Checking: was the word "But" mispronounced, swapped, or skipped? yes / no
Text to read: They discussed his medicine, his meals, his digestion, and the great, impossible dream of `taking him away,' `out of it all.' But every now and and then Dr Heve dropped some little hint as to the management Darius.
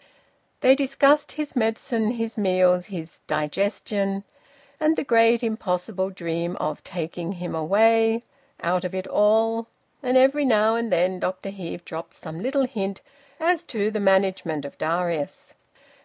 yes